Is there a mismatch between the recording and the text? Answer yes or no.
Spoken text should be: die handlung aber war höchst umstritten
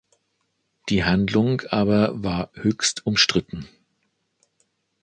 no